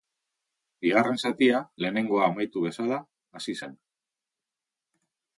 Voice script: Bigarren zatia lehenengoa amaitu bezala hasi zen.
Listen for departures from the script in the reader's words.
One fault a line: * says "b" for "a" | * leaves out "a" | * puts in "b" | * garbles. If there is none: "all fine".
all fine